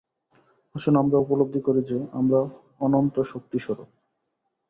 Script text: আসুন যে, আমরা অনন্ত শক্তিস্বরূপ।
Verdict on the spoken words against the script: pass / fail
fail